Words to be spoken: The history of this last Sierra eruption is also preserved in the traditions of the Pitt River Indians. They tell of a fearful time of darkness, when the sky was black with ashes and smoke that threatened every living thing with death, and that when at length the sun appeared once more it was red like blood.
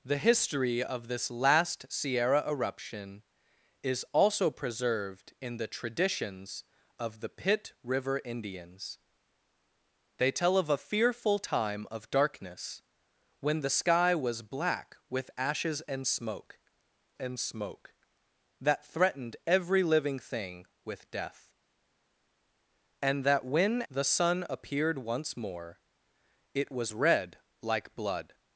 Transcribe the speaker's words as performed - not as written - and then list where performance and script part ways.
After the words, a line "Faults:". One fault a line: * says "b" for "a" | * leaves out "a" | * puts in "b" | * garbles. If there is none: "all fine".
The history of this last Sierra eruption is also preserved in the traditions of the Pitt River Indians. They tell of a fearful time of darkness, when the sky was black with ashes and smoke and smoke that threatened every living thing with death, and that when the sun appeared once more it was red like blood.
Faults:
* puts in "and smoke"
* leaves out "at length"